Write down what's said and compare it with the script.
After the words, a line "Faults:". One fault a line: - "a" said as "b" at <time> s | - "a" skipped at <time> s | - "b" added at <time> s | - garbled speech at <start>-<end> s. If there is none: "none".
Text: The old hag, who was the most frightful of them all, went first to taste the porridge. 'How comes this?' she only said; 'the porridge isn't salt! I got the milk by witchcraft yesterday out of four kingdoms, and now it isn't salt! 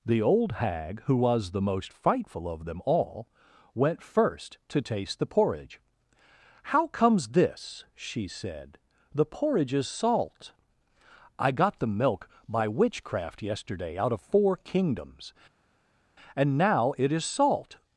The old hag, who was the most frightful of them all, went first to taste the porridge. 'How comes this?' she said; 'the porridge is salt! I got the milk by witchcraft yesterday out of four kingdoms, and now it is salt!
Faults:
- "only" skipped at 8.3 s
- "isn't" said as "is" at 9.7 s
- "isn't" said as "is" at 17.1 s